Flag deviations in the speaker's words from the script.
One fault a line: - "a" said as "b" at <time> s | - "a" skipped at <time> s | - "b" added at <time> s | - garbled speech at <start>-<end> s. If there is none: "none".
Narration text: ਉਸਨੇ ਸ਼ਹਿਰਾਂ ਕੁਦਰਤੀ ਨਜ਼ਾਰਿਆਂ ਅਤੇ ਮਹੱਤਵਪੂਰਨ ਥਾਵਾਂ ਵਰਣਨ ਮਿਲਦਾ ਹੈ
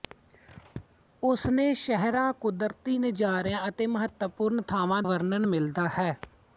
none